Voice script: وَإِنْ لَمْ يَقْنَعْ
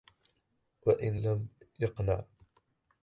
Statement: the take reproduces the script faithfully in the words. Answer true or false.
true